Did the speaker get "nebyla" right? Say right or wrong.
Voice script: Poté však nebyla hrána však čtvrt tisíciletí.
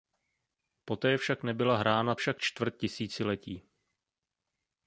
right